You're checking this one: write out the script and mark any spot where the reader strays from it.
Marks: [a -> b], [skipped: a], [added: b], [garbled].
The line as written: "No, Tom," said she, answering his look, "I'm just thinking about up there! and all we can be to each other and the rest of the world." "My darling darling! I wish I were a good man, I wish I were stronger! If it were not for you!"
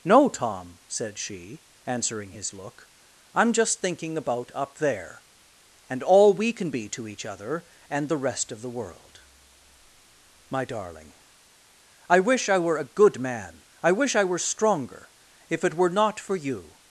"No, Tom," said she, answering his look, "I'm just thinking about up there! and all we can be to each other and the rest of the world." "My darling [skipped: darling!] I wish I were a good man, I wish I were stronger! If it were not for you!"